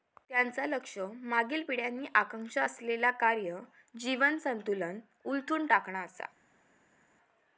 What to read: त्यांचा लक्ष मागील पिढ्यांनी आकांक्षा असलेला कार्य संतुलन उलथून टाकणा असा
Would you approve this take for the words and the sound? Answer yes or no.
no